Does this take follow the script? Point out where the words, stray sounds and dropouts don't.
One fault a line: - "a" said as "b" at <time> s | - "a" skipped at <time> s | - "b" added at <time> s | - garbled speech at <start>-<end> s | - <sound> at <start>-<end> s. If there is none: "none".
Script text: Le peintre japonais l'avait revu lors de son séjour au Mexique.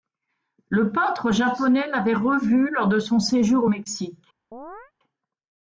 - chirp at 4.5-4.9 s